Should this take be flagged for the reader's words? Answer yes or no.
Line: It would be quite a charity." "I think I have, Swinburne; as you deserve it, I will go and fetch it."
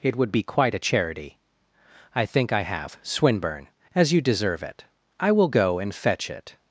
no